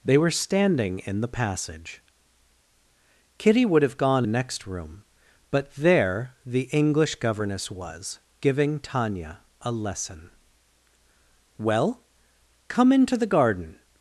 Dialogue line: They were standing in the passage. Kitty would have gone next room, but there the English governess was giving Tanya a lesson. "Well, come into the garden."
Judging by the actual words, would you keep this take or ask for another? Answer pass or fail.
pass